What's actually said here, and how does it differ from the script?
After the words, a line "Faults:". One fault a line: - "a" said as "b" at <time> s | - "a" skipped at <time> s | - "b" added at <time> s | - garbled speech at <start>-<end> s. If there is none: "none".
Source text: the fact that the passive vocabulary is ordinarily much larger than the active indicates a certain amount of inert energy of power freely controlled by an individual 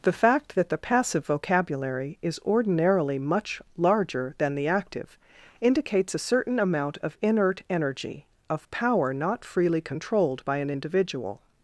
the fact that the passive vocabulary is ordinarily much larger than the active indicates a certain amount of inert energy of power not freely controlled by an individual
Faults:
- "not" added at 9.1 s